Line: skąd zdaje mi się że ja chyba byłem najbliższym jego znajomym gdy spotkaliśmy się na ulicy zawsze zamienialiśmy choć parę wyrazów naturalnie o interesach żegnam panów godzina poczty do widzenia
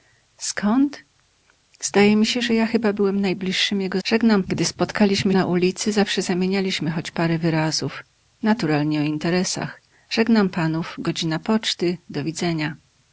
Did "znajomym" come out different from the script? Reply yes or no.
yes